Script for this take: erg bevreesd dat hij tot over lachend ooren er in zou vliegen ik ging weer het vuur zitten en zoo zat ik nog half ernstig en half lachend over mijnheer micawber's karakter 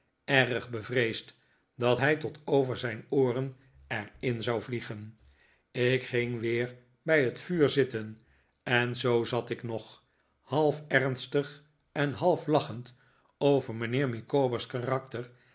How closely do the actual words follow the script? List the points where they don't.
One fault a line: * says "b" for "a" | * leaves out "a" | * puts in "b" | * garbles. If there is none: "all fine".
* says "zijn" for "lachend"
* puts in "bij"